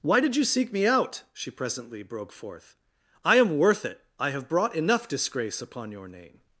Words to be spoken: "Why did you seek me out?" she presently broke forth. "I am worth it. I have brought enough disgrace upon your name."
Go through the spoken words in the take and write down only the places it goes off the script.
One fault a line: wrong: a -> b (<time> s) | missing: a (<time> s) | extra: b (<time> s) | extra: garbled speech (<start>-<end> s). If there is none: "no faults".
no faults